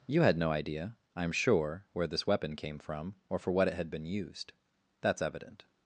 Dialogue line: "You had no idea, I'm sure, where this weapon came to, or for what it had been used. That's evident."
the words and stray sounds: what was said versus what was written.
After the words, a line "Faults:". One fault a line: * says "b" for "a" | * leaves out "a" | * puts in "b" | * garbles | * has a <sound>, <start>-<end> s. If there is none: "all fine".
"You had no idea, I'm sure, where this weapon came from, or for what it had been used. That's evident."
Faults:
* says "from" for "to"